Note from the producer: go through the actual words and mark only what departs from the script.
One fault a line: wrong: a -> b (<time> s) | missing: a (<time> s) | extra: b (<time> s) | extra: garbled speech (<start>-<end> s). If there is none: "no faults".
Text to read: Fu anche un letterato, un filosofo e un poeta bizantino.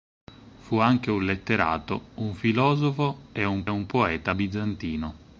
extra: un (3.7 s)